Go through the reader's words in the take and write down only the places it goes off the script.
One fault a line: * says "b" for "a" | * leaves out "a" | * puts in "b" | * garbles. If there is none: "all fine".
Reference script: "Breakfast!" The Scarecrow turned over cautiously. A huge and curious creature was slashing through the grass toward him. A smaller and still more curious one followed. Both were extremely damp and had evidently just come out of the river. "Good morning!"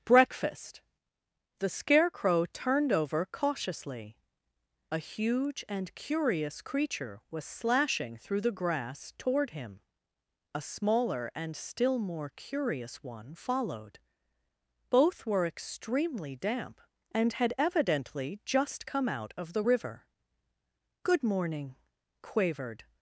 * puts in "quavered"